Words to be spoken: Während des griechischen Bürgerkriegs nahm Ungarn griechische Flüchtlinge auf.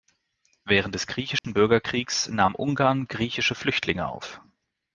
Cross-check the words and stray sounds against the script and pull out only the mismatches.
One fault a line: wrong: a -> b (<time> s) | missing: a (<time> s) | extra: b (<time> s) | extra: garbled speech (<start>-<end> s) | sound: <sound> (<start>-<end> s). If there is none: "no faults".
sound: dropout (1.4-1.4 s)